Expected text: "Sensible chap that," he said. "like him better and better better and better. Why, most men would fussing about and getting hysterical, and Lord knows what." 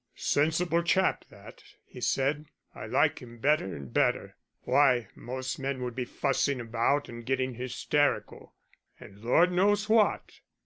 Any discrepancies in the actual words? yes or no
yes